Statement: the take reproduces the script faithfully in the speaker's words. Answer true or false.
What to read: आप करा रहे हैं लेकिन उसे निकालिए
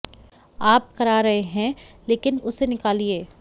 true